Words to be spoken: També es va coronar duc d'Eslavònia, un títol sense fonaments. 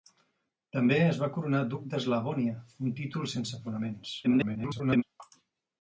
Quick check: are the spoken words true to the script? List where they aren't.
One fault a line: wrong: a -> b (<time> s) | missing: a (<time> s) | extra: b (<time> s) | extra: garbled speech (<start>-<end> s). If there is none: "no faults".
extra: garbled speech (4.2-5.0 s)